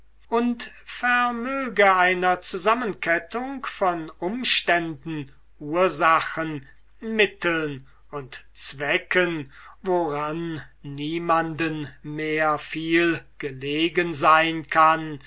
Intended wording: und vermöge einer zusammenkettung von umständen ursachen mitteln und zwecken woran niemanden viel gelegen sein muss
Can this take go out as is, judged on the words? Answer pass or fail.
fail